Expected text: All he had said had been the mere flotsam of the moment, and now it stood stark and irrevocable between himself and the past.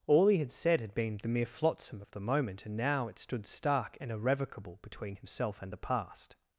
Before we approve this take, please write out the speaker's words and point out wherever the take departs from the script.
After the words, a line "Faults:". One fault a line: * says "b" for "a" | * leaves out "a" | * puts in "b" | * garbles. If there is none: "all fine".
All he had said had been the mere flotsam of the moment, and now it stood stark and irrevocable between himself and the past.
Faults:
all fine